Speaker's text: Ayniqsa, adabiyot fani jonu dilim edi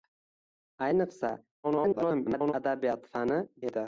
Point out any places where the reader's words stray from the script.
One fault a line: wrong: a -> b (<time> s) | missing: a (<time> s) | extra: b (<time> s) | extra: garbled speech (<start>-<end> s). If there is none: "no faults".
extra: garbled speech (1.6-2.5 s)
missing: jonu dilim (3.4 s)